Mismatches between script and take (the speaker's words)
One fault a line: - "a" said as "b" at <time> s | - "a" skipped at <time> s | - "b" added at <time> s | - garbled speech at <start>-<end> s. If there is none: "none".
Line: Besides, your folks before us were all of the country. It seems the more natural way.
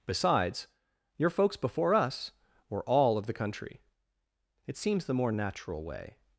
none